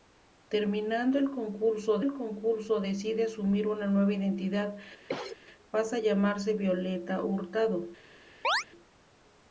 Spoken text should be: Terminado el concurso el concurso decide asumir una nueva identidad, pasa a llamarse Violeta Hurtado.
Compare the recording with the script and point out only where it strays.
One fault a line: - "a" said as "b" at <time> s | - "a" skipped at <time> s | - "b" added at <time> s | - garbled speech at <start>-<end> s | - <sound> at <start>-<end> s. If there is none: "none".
- cough at 5.1-5.4 s
- chirp at 8.4-8.6 s